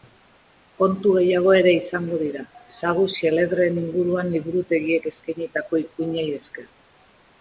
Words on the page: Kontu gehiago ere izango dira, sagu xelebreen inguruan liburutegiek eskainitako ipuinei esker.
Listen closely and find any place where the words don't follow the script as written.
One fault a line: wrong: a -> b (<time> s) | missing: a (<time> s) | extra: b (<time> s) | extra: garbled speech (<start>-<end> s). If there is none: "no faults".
no faults